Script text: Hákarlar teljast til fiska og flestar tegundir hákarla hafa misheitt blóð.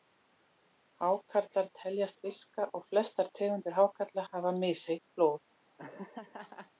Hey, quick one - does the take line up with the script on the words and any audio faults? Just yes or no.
no